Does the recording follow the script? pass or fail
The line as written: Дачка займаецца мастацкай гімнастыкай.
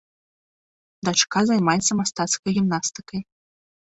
pass